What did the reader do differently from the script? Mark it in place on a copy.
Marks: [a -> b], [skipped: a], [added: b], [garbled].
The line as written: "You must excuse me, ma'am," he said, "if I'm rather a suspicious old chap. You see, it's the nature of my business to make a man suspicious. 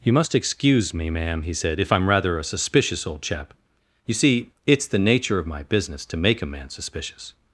"You must excuse me, ma'am," he said, "if I'm rather a suspicious old chap. You see, it's the nature of my business to make a man suspicious.